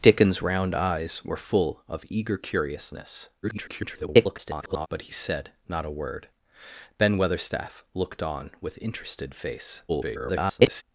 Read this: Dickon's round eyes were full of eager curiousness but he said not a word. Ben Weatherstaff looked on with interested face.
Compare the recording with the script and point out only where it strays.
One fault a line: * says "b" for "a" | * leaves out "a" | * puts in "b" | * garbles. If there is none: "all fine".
* garbles
* garbles